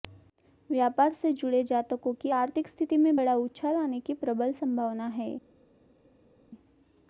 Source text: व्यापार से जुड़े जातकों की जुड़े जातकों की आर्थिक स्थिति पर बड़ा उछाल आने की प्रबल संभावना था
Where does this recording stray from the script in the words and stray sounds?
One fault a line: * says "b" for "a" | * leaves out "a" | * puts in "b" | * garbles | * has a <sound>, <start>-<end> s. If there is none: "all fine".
* leaves out "जुड़े जातकों की"
* says "में" for "पर"
* says "है" for "था"